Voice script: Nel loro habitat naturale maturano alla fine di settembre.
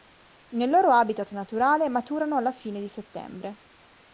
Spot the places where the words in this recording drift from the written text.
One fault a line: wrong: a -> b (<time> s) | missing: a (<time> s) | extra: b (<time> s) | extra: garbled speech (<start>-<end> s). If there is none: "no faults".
no faults